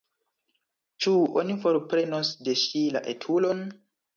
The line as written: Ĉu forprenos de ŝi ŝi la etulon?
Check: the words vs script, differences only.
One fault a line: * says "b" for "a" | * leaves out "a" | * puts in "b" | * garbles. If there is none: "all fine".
* puts in "oni"
* leaves out "ŝi"